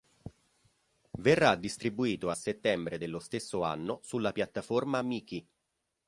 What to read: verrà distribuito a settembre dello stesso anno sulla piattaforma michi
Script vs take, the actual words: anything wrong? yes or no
no